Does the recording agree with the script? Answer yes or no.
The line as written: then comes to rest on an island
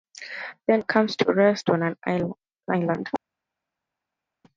yes